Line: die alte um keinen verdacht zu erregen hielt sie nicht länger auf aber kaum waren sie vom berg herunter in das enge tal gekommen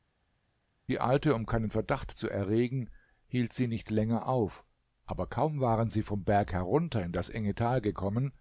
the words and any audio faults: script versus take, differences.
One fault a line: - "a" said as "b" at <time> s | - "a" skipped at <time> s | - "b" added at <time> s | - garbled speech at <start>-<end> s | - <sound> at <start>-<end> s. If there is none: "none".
none